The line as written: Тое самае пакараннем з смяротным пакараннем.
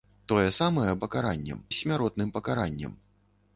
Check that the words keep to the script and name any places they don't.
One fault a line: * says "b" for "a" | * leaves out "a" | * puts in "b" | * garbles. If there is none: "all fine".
all fine